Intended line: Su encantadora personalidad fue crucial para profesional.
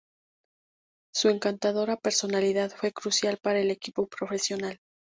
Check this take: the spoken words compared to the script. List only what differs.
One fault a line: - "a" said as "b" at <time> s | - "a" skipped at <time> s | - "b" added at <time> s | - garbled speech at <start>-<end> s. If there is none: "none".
- "el equipo" added at 3.6 s